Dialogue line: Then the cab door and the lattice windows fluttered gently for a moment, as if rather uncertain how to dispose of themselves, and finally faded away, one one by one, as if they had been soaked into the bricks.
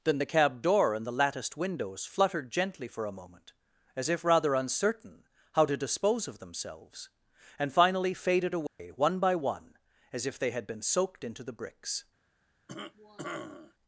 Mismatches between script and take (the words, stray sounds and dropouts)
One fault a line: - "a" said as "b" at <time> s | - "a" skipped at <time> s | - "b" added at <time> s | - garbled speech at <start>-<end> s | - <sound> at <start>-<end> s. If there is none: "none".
- "lattice" said as "latticed" at 1.1 s
- dropout at 8.7-8.8 s
- "one" skipped at 9.2 s
- cough at 12.7-13.7 s